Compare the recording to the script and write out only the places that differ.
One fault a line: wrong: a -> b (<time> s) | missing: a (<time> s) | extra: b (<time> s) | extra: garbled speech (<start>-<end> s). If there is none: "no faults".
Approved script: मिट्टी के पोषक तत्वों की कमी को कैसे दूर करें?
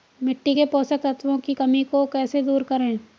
no faults